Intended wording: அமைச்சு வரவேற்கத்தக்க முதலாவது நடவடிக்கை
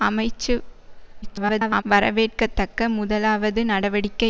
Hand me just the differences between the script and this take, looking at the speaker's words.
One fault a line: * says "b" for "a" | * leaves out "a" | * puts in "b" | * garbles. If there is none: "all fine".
* garbles